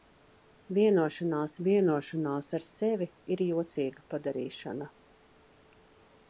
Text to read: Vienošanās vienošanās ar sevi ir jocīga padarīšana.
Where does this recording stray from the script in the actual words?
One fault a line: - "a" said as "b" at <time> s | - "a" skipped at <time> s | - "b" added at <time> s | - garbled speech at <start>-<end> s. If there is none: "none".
none